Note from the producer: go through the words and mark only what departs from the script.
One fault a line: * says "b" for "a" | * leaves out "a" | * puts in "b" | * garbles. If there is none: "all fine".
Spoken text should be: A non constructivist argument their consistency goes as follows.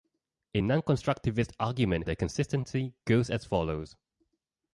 all fine